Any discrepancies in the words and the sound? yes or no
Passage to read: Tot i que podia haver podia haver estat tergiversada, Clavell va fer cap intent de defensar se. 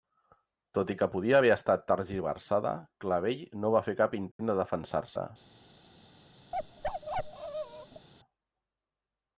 yes